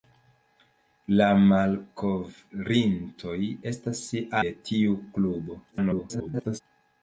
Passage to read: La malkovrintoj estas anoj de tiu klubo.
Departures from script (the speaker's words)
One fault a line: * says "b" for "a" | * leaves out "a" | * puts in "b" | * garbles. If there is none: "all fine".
* leaves out "anoj"
* garbles